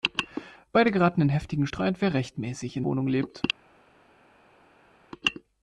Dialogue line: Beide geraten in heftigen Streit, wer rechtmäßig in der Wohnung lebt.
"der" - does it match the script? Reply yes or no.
no